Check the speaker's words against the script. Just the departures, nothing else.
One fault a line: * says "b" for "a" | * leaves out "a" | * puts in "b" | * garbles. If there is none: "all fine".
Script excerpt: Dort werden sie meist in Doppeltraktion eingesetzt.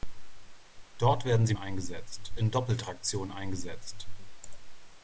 * says "eingesetzt" for "meist"